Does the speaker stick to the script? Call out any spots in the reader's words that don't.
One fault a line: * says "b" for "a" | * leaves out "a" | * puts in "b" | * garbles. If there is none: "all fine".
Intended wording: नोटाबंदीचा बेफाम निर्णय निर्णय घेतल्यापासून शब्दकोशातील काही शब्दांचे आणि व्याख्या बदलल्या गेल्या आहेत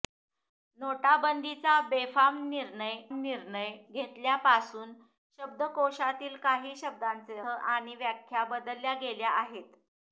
all fine